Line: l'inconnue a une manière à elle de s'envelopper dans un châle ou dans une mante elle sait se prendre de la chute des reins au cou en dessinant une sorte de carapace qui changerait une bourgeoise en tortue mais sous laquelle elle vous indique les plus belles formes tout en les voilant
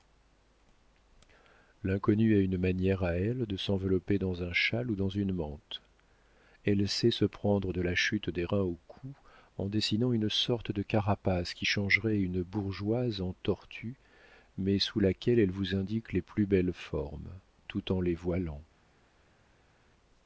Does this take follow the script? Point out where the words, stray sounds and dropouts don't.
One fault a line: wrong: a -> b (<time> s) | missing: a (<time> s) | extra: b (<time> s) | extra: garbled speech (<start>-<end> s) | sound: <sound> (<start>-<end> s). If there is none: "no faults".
no faults